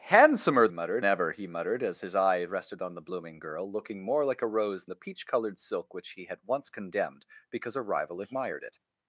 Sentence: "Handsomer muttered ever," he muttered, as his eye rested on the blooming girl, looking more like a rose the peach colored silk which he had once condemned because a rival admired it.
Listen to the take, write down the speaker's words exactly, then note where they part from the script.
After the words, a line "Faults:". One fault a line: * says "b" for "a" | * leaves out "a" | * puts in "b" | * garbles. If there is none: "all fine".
"Handsomer muttered ever," he muttered, as his eye rested on the blooming girl, looking more like a rose the peach colored silk which he had once condemned because a rival admired it.
Faults:
all fine